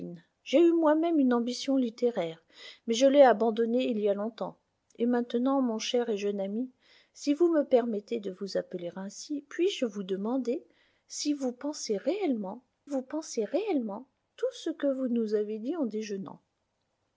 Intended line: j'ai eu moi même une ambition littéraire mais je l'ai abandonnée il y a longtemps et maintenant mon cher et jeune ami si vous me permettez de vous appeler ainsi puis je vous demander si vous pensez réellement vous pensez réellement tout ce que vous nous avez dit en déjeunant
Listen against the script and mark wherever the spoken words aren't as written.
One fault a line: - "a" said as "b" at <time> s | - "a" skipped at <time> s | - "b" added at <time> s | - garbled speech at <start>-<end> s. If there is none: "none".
none